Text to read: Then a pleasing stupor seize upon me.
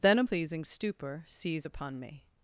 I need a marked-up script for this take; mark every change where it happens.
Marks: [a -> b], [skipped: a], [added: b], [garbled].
Then a pleasing stupor seize upon me.